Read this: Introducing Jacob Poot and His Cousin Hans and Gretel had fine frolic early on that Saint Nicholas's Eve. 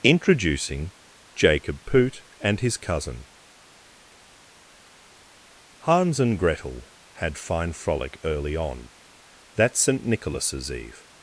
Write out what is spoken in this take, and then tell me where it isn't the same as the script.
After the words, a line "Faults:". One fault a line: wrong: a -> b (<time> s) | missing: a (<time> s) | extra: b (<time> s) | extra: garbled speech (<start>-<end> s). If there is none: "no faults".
Introducing Jacob Poot and His Cousin Hans and Gretel had fine frolic early on that Saint Nicholas's Eve.
Faults:
no faults